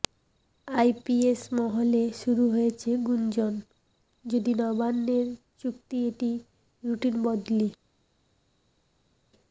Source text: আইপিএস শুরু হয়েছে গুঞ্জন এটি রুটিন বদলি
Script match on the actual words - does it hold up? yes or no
no